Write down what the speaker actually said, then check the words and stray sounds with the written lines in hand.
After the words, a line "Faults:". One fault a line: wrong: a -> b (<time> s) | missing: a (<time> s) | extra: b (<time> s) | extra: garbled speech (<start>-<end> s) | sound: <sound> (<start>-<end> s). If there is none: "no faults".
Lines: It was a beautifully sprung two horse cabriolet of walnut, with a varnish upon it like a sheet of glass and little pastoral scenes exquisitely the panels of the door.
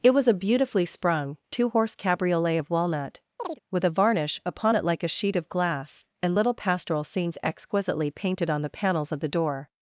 It was a beautifully sprung two horse cabriolet of walnut, with a varnish upon it like a sheet of glass and little pastoral scenes exquisitely painted on the panels of the door.
Faults:
sound: chirp (3.4-3.6 s)
extra: painted on (8.1 s)